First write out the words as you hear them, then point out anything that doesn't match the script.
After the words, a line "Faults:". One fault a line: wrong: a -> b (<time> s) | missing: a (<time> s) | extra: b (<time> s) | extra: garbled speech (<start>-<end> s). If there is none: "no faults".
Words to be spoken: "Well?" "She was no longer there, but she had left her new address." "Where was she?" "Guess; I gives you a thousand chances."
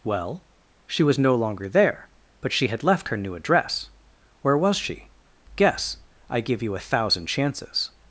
"Well?" "She was no longer there, but she had left her new address." "Where was she?" "Guess; I give you a thousand chances."
Faults:
wrong: gives -> give (6.4 s)